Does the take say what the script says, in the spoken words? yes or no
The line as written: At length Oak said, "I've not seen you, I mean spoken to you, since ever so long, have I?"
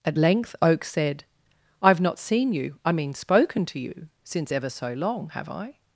yes